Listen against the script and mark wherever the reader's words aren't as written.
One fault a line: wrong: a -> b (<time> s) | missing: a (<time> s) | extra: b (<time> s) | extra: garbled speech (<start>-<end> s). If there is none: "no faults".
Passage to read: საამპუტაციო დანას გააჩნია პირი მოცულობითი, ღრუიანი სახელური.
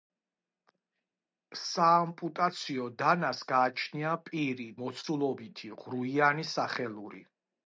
no faults